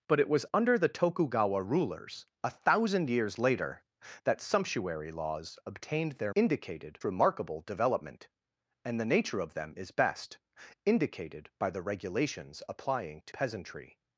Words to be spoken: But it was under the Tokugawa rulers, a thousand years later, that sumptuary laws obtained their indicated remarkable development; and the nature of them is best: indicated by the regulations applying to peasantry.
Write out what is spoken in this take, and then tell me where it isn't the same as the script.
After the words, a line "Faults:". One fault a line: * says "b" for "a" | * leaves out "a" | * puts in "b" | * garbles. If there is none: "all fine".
But it was under the Tokugawa rulers, a thousand years later, that sumptuary laws obtained their indicated remarkable development; and the nature of them is best: indicated by the regulations applying to peasantry.
Faults:
all fine